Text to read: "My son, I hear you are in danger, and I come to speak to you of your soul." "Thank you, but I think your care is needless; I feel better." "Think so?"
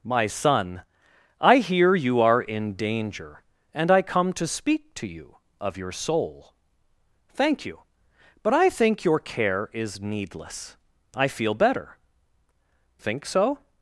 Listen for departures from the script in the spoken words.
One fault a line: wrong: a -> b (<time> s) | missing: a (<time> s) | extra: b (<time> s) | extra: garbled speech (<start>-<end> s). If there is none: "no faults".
no faults